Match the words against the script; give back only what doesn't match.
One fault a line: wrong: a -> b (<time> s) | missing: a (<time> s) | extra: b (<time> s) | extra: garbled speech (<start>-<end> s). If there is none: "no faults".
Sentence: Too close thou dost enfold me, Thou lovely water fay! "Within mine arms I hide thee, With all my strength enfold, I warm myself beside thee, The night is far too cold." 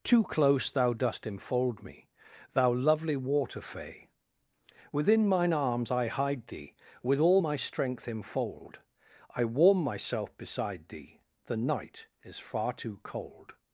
no faults